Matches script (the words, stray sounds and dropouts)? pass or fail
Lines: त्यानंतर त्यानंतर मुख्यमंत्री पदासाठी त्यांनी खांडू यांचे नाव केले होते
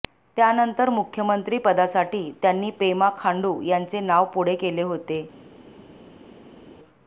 fail